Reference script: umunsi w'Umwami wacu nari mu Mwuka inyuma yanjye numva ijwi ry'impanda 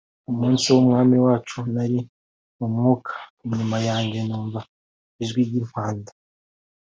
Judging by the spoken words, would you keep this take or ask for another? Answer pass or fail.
pass